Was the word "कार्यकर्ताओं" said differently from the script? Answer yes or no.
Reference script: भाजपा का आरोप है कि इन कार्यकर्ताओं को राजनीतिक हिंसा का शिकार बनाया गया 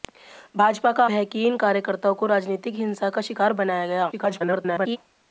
no